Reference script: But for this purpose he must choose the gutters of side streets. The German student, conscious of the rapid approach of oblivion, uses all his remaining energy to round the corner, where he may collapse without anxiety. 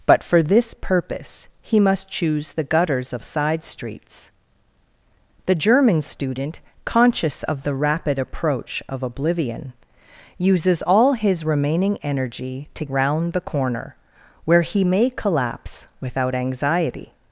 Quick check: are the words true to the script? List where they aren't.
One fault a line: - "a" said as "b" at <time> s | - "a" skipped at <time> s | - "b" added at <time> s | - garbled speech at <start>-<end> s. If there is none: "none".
none